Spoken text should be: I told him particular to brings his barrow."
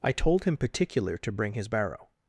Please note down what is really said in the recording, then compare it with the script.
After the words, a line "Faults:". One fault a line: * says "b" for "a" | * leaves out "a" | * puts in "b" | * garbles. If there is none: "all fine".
I told him particular to bring his barrow."
Faults:
* says "bring" for "brings"